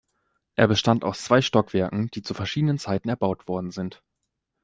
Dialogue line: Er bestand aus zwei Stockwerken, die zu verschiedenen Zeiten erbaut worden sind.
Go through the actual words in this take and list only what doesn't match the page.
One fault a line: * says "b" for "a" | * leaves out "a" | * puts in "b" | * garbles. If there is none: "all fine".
all fine